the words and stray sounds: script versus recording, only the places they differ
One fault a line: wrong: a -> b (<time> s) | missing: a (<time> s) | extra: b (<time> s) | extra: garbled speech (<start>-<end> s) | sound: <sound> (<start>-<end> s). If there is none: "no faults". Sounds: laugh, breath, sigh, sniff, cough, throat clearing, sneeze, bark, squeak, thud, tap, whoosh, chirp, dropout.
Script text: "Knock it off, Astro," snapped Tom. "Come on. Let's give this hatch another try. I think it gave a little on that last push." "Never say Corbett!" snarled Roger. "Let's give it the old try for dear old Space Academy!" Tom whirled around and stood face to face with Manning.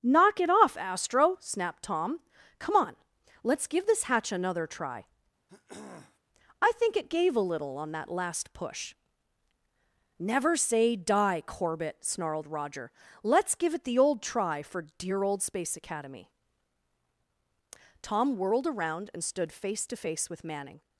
sound: throat clearing (5.5-6.2 s)
extra: die (10.9 s)